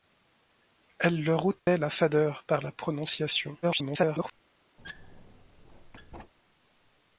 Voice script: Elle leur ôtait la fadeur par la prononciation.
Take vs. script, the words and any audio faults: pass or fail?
fail